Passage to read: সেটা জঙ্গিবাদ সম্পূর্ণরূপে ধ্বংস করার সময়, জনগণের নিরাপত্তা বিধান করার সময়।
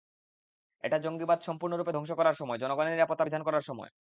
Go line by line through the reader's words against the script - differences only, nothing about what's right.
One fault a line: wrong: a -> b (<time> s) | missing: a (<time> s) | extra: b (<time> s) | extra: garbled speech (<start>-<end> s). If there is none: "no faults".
wrong: সেটা -> এটা (0.8 s)